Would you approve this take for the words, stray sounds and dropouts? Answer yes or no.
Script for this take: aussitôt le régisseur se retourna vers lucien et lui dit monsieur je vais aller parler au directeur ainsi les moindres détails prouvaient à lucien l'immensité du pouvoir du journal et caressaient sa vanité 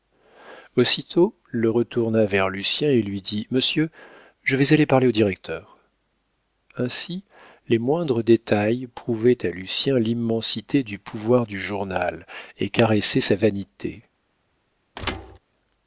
no